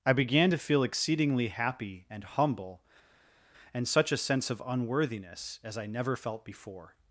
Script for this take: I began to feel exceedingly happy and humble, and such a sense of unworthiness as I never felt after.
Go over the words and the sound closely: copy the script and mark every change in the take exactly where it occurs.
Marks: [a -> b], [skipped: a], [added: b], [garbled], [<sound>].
I began to feel exceedingly happy and humble, and such a sense of unworthiness as I never felt [after. -> before]